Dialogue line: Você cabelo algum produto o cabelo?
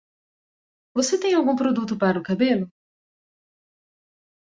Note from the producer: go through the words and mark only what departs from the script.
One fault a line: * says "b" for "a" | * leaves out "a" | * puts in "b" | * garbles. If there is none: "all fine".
* says "tem" for "cabelo"
* puts in "para"